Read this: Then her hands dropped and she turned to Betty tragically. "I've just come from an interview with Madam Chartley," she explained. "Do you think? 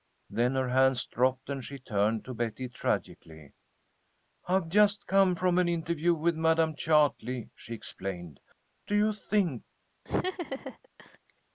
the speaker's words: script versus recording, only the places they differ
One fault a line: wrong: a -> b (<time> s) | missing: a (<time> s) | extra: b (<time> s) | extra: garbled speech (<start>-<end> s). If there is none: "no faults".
no faults